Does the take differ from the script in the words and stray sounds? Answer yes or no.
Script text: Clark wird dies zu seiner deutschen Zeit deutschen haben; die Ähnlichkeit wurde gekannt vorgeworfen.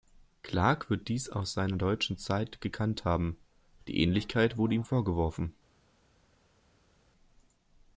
yes